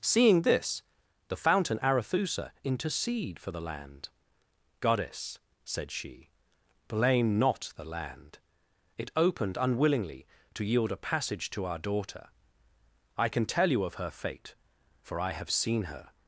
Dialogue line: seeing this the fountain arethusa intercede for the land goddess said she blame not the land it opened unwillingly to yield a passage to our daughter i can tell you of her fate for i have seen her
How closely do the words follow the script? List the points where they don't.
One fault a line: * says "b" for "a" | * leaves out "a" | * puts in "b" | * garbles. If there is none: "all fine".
all fine